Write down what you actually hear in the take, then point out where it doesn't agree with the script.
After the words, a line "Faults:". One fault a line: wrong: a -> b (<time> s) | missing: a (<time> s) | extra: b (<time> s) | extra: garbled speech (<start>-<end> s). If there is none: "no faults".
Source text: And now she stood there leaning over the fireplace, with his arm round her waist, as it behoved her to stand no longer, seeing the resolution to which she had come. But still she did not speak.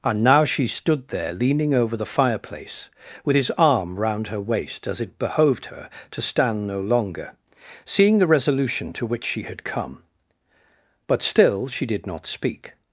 And now she stood there leaning over the fireplace, with his arm round her waist, as it behoved her to stand no longer, seeing the resolution to which she had come. But still she did not speak.
Faults:
no faults